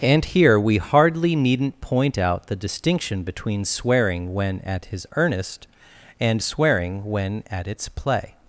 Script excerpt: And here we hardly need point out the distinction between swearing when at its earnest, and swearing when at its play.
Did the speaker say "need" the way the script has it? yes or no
no